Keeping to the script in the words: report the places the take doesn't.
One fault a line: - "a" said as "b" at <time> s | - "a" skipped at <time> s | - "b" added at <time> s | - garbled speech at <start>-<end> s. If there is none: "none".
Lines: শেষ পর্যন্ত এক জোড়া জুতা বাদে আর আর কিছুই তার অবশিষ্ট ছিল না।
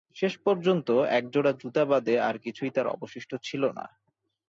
- "আর" skipped at 2.4 s